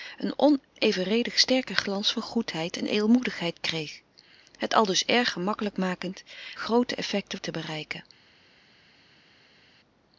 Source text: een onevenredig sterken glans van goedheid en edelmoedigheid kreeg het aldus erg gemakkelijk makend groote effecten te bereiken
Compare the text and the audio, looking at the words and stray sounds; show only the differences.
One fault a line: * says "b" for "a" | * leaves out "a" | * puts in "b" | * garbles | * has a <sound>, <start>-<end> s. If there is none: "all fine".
all fine